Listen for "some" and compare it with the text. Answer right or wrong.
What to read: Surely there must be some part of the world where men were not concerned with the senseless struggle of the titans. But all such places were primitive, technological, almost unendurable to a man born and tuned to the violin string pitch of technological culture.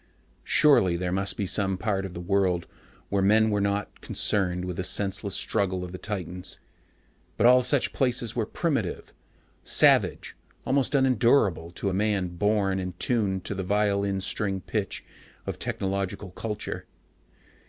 right